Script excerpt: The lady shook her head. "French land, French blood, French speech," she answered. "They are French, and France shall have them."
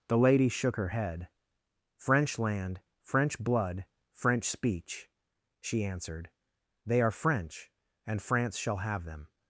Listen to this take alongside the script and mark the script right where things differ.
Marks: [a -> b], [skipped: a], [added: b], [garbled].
The lady shook her head. "French land, French blood, French speech," she answered. "They are French, and France shall have them."